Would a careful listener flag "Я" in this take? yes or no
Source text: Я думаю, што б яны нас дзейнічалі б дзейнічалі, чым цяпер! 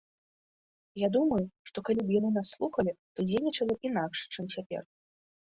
no